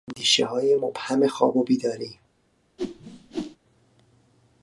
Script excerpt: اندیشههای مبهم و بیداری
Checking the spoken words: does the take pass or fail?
fail